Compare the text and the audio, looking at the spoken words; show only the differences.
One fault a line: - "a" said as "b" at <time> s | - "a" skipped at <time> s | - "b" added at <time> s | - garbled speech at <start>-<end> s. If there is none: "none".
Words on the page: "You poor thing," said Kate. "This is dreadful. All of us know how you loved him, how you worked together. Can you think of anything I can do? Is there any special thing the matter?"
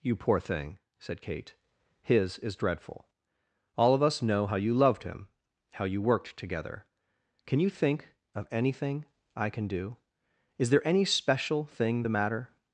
- "This" said as "His" at 2.0 s